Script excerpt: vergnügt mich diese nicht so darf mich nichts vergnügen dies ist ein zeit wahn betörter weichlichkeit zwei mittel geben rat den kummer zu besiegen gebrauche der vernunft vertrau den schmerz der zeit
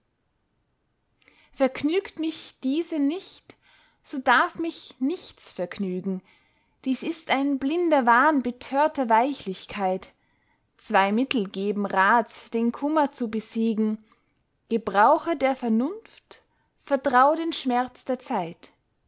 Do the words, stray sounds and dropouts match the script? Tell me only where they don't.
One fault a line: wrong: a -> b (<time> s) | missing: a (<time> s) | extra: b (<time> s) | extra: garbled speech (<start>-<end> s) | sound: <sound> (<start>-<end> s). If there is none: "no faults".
wrong: zeit -> blinder (7.6 s)